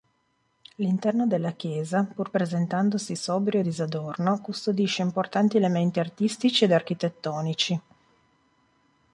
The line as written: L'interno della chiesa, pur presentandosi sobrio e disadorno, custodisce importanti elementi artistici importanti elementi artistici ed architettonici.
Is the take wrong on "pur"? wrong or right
right